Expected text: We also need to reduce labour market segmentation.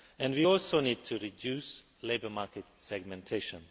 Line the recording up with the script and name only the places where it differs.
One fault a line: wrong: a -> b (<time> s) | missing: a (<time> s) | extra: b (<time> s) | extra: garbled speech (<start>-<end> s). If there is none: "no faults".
no faults